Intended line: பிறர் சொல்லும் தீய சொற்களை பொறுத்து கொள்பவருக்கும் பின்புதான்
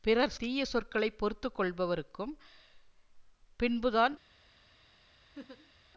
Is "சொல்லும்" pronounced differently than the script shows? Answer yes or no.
yes